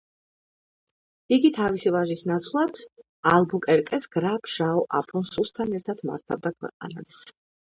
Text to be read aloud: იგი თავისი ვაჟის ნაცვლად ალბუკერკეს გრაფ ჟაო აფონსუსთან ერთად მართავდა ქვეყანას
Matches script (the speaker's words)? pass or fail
pass